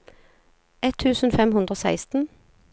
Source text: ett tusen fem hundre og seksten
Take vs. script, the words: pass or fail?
pass